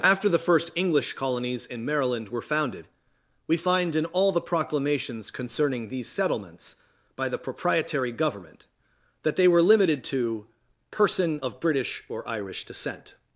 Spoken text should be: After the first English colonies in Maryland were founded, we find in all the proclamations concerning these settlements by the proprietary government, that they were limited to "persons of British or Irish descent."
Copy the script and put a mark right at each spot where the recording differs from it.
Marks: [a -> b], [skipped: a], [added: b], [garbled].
After the first English colonies in Maryland were founded, we find in all the proclamations concerning these settlements by the proprietary government, that they were limited to ["persons -> person] of British or Irish descent."